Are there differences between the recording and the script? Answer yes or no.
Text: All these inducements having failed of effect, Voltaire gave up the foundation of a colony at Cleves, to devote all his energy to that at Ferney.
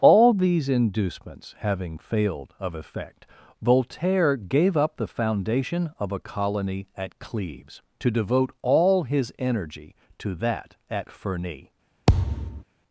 no